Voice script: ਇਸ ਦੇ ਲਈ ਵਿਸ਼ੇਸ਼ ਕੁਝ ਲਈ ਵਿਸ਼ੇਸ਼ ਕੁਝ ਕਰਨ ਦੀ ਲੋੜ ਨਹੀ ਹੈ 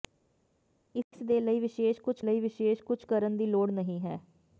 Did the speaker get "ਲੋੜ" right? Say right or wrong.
right